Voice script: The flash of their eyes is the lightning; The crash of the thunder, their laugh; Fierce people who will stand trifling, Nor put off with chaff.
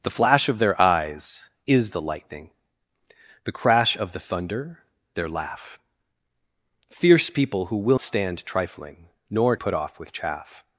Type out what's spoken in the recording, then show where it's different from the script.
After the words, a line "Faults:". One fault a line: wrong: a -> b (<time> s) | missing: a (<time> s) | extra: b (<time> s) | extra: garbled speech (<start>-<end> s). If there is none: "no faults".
The flash of their eyes is the lightning; The crash of the thunder, their laugh; Fierce people who will stand trifling, Nor put off with chaff.
Faults:
no faults